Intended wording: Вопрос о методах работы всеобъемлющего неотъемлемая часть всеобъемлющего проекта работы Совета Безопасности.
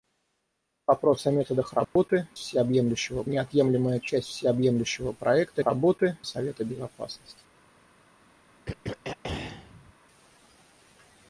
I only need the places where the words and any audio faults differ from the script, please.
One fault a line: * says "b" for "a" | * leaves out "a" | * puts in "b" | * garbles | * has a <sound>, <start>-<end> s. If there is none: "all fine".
* has a dropout, 1.8-2.0 s
* has a throat clearing, 8.7-9.9 s